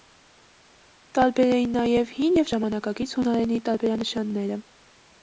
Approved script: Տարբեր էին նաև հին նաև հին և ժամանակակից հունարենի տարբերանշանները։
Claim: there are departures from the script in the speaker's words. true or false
true